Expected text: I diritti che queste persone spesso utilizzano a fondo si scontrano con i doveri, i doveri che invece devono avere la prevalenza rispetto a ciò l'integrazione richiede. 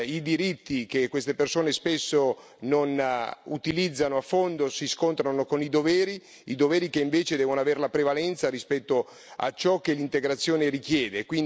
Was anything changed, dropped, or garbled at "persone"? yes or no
no